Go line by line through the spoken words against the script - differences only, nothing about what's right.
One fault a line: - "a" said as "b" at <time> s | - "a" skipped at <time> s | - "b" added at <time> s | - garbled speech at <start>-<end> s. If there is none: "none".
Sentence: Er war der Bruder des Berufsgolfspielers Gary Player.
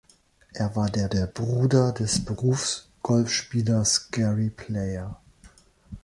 - "der" added at 1.1 s